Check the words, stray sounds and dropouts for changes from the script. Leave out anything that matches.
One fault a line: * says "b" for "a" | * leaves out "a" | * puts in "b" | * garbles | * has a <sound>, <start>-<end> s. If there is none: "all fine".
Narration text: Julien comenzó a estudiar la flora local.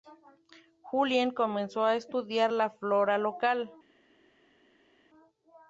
all fine